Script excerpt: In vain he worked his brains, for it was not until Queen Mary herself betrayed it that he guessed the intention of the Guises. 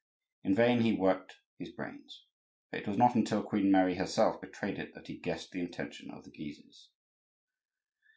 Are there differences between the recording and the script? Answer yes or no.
no